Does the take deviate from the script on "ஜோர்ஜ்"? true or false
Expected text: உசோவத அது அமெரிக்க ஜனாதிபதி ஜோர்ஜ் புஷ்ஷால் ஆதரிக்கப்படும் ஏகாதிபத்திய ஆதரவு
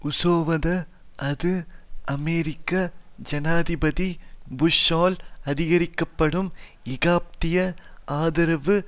true